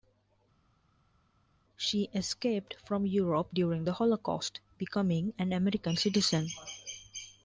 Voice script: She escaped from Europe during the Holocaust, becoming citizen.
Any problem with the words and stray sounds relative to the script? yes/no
yes